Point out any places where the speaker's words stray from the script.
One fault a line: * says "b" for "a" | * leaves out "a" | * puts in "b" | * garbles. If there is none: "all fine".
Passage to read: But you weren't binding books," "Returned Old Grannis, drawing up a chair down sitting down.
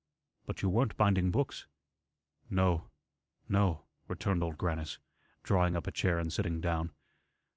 * puts in "No no"
* says "and" for "down"